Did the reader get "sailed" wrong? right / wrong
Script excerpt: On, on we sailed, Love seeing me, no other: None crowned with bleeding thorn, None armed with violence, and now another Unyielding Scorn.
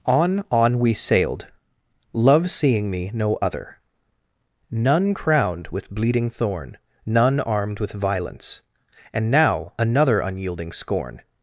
right